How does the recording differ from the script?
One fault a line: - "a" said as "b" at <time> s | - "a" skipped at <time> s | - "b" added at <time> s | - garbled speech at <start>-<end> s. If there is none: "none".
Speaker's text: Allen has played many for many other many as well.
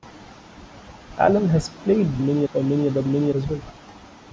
none